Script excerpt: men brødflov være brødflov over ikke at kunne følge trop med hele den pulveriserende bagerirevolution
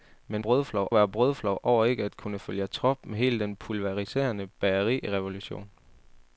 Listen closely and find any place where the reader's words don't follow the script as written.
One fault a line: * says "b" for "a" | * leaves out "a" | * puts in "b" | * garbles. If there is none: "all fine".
all fine